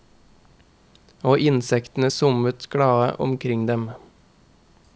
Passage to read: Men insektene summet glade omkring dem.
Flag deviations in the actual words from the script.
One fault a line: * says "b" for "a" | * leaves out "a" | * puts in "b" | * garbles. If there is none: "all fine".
* says "Og" for "Men"